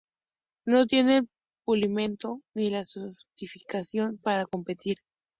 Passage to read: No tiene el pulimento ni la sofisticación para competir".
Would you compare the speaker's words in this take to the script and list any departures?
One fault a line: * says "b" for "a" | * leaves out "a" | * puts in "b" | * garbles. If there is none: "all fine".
all fine